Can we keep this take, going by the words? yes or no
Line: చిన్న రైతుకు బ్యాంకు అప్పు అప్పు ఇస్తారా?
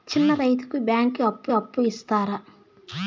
yes